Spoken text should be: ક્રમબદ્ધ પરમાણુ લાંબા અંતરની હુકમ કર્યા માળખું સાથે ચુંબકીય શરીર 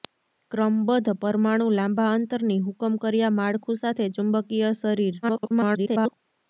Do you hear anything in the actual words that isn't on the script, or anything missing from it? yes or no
yes